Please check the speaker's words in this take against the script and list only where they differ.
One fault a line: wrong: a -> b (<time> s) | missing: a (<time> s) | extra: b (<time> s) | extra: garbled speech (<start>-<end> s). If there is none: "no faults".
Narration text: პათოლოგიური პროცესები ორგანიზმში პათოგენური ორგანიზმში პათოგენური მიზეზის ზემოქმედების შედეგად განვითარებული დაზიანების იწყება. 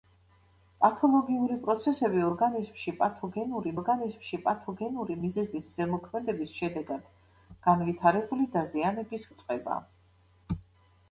no faults